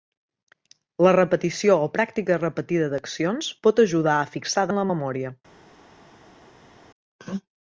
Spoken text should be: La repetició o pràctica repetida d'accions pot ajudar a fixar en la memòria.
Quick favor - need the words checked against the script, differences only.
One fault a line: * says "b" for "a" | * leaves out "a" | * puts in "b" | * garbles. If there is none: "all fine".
all fine